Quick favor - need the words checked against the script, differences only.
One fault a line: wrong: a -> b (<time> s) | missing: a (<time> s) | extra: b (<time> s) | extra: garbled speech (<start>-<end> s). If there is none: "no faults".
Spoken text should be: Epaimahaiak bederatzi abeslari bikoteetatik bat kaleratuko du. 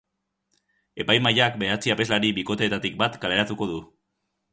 no faults